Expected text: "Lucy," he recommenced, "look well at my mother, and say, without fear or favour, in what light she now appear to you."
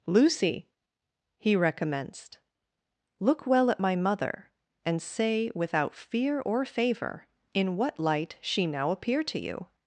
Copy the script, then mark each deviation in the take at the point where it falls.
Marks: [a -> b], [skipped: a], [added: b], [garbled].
"Lucy," he recommenced, "look well at my mother, and say, without fear or favour, in what light she now appear to you."